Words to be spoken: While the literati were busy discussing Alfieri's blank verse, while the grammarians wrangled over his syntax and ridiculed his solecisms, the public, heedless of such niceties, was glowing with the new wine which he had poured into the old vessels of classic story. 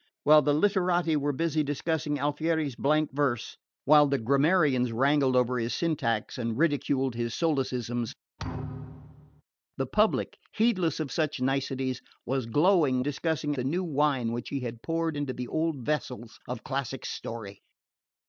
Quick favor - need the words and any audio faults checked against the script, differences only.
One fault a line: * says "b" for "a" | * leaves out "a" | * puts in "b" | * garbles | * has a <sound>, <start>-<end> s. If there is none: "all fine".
* has a thud, 8.4-9.4 s
* says "discussing" for "with"